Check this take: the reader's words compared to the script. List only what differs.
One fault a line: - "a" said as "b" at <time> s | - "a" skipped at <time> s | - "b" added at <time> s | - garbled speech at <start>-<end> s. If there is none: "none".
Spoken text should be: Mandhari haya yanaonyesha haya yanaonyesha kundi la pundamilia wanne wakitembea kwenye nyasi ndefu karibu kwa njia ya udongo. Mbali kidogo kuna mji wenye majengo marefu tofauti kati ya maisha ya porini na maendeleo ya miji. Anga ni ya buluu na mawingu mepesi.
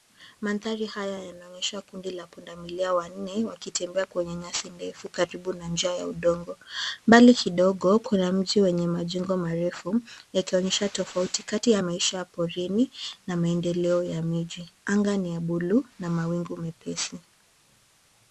- "haya yanaonyesha" skipped at 1.8 s
- "kwa" said as "na" at 5.5 s
- "yakionyesha" added at 10.3 s